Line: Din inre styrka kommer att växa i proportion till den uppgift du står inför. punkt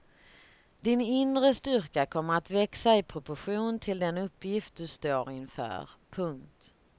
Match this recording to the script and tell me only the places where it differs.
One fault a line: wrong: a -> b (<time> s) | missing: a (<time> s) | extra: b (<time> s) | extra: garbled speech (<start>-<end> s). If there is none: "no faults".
no faults